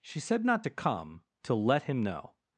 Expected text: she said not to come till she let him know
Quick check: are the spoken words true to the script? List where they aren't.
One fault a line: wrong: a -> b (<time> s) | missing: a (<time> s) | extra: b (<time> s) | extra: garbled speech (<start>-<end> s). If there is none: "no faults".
missing: she (1.6 s)